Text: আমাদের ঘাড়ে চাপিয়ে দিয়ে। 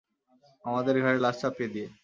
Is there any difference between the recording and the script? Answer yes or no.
yes